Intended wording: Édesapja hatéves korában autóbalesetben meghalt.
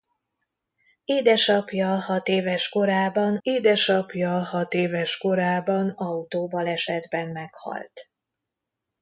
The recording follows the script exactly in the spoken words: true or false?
false